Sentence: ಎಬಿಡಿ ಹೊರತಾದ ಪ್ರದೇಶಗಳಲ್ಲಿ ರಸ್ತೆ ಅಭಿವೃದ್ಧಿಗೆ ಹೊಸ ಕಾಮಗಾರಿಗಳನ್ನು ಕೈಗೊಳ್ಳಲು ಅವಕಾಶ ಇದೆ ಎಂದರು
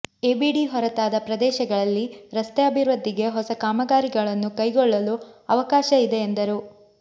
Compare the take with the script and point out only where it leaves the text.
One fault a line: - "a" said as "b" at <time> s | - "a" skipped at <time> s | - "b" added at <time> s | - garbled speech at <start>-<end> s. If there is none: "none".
none